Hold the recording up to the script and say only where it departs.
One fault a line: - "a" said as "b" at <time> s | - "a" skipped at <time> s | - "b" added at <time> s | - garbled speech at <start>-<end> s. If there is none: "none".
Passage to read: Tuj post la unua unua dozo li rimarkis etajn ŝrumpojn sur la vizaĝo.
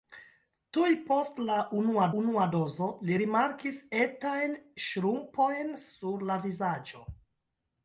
none